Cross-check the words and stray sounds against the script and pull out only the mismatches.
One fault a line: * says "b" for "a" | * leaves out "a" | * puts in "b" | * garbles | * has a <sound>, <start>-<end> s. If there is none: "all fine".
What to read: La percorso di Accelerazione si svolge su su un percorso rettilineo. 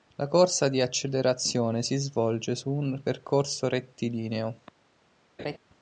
* says "corsa" for "percorso"
* leaves out "su"
* has a laugh, 5.4-5.6 s